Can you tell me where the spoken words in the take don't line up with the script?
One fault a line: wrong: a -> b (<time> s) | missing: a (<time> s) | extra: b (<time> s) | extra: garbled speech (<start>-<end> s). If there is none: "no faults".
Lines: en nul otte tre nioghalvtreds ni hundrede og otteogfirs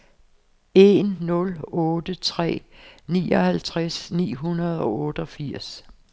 no faults